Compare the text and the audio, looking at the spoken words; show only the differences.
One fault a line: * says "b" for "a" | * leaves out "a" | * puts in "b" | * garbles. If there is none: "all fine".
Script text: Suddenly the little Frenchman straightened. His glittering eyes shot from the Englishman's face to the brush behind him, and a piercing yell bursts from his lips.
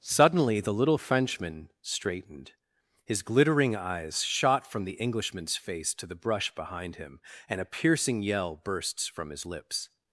all fine